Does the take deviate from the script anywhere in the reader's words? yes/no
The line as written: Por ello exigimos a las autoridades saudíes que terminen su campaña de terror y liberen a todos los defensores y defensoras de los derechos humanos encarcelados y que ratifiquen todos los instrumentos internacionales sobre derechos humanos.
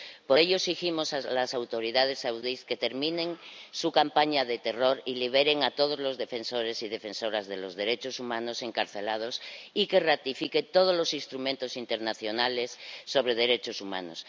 no